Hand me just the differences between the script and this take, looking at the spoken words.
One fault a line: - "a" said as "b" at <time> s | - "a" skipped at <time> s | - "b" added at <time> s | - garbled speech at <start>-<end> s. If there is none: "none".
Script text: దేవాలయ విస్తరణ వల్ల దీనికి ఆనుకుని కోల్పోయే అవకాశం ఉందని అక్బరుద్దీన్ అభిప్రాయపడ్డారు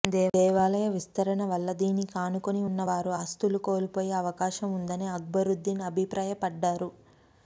- "ఉన్న వారు ఆస్తులు" added at 2.7 s